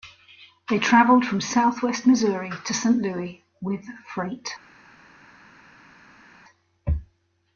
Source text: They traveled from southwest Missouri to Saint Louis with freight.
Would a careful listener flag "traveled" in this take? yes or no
no